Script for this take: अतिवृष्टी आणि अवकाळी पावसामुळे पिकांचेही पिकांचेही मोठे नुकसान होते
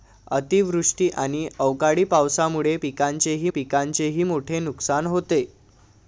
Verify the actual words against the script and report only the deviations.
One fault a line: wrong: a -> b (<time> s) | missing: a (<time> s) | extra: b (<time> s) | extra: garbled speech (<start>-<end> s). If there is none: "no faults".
no faults